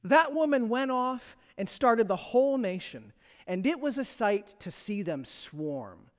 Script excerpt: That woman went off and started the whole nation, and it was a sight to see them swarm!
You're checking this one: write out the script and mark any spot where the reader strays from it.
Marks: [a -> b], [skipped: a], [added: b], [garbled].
That woman went off and started the whole nation, and it was a sight to see them swarm!